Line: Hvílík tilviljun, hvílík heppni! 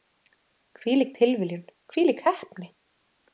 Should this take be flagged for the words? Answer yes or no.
no